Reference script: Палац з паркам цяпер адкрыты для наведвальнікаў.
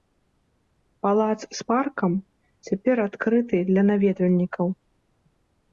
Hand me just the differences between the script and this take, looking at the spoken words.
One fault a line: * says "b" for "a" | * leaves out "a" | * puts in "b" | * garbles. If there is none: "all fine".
all fine